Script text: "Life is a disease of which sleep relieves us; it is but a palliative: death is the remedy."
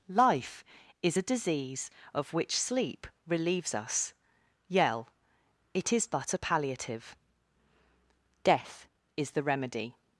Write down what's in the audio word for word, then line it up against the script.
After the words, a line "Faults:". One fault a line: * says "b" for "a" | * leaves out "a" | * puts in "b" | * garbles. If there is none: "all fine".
"Life is a disease of which sleep relieves us; yell it is but a palliative: death is the remedy."
Faults:
* puts in "yell"